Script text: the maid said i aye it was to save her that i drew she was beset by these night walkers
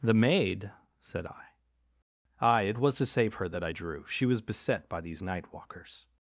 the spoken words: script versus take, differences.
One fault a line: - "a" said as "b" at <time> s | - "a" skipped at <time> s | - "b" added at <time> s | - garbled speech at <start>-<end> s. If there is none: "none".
none